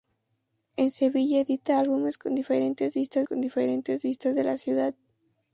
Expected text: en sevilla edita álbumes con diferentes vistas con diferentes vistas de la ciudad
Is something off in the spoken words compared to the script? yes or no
no